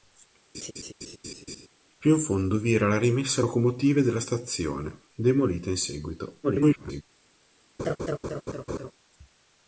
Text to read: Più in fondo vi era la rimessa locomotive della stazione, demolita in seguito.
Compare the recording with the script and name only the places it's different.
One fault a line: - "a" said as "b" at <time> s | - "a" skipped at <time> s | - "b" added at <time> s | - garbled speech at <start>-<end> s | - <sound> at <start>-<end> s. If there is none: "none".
- laugh at 0.5-1.7 s
- garbled speech at 6.4-7.0 s
- laugh at 7.8-8.9 s